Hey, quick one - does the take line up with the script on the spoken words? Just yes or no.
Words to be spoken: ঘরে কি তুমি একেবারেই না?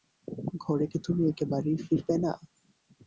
no